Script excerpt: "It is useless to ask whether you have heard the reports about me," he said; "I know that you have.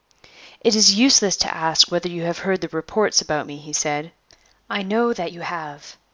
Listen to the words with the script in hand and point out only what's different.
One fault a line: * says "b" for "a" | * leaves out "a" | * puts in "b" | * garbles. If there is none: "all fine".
all fine